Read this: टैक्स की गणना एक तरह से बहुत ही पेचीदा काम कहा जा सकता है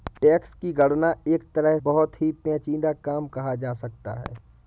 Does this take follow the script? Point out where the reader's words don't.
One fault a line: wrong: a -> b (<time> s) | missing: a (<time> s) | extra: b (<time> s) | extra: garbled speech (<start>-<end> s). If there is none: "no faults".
missing: से (1.8 s)